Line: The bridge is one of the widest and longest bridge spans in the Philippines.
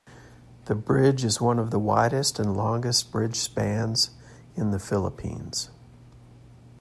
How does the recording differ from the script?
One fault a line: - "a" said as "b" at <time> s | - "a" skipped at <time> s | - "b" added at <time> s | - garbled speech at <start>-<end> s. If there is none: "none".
none